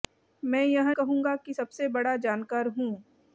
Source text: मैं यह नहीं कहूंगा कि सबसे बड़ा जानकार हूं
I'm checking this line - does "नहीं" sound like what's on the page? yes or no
no